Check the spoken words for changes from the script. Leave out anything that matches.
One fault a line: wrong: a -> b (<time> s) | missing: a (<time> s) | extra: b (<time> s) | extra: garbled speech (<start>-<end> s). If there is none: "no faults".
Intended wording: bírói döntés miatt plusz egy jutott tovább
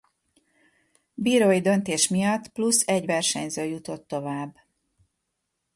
extra: versenyző (3.1 s)